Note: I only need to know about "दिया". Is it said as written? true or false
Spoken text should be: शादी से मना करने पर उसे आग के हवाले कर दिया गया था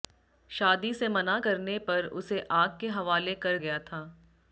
false